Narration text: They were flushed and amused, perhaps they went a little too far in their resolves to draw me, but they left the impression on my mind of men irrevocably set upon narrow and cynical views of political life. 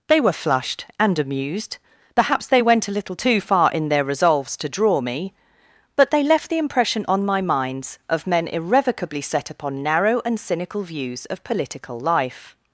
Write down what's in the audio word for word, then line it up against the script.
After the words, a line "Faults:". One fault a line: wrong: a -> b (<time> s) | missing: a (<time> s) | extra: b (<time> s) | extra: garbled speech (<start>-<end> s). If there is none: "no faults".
They were flushed and amused, perhaps they went a little too far in their resolves to draw me, but they left the impression on my minds of men irrevocably set upon narrow and cynical views of political life.
Faults:
wrong: mind -> minds (7.4 s)